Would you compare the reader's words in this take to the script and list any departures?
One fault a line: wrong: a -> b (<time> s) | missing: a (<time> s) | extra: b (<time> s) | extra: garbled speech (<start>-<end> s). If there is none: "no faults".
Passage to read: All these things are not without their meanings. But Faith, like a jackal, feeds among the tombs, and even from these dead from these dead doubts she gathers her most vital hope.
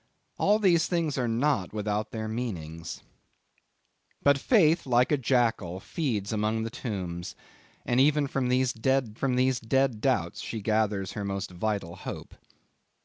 no faults